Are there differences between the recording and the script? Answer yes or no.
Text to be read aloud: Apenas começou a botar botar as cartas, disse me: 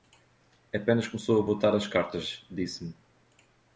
yes